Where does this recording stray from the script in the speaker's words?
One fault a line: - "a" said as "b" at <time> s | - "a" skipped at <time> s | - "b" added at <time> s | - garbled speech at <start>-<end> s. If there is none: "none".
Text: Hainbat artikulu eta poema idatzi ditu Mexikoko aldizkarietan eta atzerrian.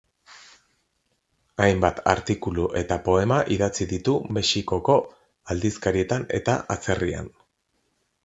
none